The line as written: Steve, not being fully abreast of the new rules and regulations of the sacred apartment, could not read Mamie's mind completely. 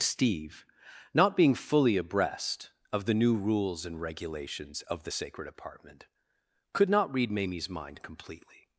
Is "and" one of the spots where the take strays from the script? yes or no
no